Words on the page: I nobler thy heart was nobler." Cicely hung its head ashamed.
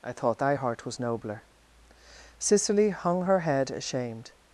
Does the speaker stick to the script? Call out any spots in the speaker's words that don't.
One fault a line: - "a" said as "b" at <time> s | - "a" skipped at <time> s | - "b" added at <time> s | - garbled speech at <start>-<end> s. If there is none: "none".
- "nobler" said as "thought" at 0.1 s
- "its" said as "her" at 3.2 s